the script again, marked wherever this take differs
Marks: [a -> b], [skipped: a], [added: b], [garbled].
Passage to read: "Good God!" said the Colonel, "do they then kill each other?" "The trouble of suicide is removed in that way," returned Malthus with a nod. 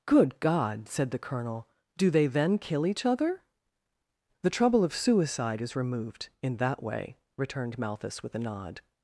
"Good God!" said the Colonel, "do they then kill each other?" "The trouble of suicide is removed in that way," returned Malthus with a nod.